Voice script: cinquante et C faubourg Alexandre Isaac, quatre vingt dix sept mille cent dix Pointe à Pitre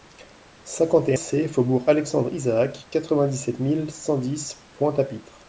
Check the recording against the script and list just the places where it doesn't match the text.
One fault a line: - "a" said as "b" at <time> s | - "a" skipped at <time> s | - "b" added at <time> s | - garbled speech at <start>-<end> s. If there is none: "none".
none